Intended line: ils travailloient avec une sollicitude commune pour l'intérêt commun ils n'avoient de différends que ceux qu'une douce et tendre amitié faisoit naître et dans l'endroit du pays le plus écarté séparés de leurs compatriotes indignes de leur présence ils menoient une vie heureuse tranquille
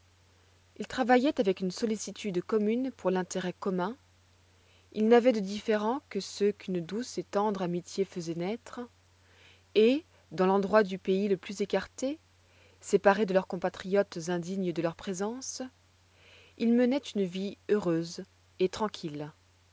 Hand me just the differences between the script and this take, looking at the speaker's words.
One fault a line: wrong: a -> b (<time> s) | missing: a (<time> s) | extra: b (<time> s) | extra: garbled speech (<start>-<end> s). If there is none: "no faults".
extra: et (18.6 s)